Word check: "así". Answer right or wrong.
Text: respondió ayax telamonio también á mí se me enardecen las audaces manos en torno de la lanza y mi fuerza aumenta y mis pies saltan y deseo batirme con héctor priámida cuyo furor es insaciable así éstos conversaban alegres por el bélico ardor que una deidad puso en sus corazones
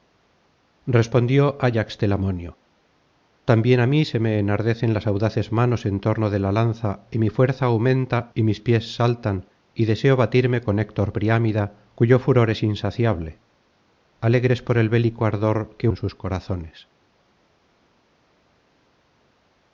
wrong